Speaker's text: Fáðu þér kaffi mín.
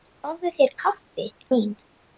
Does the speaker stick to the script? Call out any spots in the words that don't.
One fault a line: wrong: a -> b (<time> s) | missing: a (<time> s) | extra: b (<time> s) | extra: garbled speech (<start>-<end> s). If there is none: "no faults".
no faults